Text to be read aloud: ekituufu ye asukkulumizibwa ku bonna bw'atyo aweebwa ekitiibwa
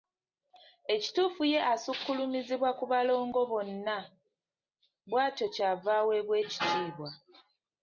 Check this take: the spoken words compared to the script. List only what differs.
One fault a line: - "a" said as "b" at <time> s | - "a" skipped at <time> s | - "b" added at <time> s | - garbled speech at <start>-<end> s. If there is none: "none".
- "balongo" added at 2.9 s
- "ky'ava" added at 5.5 s